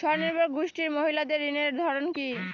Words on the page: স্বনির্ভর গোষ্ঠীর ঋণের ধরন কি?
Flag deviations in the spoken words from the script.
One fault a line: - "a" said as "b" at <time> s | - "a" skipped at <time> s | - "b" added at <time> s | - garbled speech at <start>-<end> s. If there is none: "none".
- "মহিলাদের" added at 0.9 s